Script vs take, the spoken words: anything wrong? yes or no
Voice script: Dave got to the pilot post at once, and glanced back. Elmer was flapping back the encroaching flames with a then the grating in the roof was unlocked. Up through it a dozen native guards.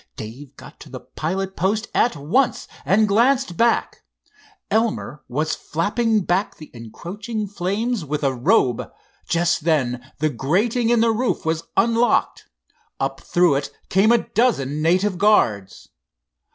yes